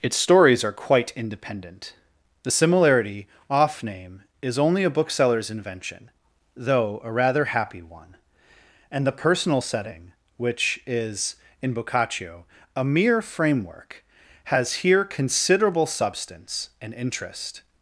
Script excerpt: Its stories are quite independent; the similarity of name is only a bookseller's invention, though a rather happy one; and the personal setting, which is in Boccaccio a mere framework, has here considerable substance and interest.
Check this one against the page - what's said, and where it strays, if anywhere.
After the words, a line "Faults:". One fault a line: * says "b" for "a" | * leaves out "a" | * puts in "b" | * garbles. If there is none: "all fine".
Its stories are quite independent; the similarity off name is only a bookseller's invention, though a rather happy one; and the personal setting, which is in Boccaccio a mere framework, has here considerable substance and interest.
Faults:
* says "off" for "of"